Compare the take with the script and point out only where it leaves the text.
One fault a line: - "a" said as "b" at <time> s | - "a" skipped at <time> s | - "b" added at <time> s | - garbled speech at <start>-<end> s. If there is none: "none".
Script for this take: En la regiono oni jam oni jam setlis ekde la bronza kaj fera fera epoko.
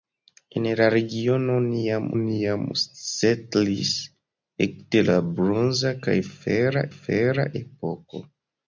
none